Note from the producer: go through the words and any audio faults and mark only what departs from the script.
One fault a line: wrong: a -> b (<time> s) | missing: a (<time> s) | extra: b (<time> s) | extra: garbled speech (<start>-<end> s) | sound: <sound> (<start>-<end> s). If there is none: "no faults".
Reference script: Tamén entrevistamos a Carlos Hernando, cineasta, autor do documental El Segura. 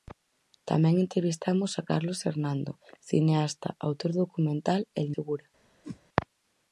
sound: whoosh (5.8-6.0 s)